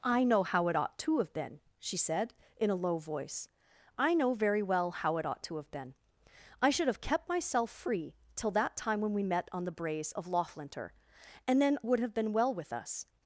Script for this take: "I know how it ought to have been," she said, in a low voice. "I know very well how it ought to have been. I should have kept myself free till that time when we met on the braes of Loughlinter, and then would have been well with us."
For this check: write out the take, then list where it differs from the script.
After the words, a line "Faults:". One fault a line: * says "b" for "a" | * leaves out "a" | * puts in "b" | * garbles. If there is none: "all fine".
"I know how it ought to have been," she said, in a low voice. "I know very well how it ought to have been. I should have kept myself free till that time when we met on the braes of Loughlinter, and then would have been well with us."
Faults:
all fine